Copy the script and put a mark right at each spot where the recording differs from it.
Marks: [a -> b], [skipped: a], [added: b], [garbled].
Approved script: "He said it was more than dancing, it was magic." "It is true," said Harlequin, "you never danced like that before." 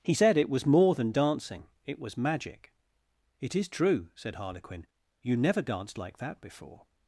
"He said it was more than dancing, it was magic." "It is true," said Harlequin, "you never danced like that before."